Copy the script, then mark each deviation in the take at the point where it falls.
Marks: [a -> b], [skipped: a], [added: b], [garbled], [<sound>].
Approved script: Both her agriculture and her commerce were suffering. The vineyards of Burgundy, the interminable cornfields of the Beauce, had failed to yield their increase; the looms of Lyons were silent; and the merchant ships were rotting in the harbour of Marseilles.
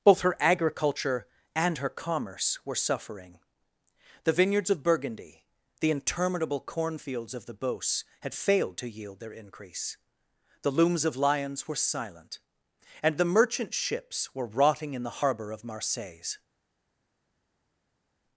Both her agriculture and her commerce were suffering. The vineyards of Burgundy, the interminable cornfields of the Beauce, had failed to yield their increase; the looms of Lyons were silent; and the merchant ships were rotting in the harbour of Marseilles.